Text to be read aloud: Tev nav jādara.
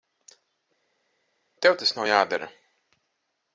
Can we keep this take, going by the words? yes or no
no